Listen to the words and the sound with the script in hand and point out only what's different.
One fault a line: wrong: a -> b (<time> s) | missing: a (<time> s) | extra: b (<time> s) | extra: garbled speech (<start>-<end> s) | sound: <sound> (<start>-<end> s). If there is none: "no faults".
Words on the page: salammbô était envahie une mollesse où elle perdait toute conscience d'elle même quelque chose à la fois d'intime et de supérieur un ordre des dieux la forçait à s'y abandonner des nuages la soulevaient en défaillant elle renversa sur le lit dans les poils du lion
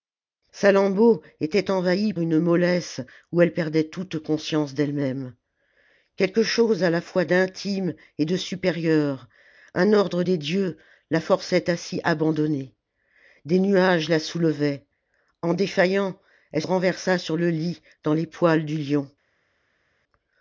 no faults